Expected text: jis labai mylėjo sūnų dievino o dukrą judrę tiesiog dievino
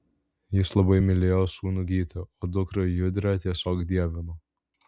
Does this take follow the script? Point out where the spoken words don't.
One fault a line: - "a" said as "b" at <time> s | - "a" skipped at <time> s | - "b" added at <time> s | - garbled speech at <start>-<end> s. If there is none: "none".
- "dievino" said as "gytį" at 1.9 s